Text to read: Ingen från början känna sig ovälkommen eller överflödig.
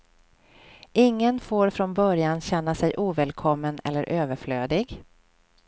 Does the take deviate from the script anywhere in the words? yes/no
yes